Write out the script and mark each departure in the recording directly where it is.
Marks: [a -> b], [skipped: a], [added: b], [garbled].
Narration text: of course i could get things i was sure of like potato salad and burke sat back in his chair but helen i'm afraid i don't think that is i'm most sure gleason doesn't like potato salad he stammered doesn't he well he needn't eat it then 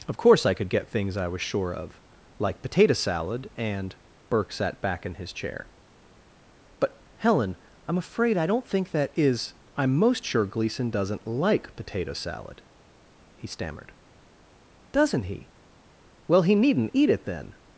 of course i could get things i was sure of like potato salad and burke sat back in his chair but helen i'm afraid i don't think that is i'm most sure gleason doesn't like potato salad he stammered doesn't he well he needn't eat it then